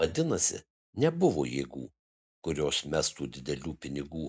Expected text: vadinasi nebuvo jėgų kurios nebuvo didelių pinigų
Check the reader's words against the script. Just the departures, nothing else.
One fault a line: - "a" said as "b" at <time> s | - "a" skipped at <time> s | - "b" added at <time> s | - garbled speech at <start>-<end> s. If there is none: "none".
- "nebuvo" said as "mestų" at 2.9 s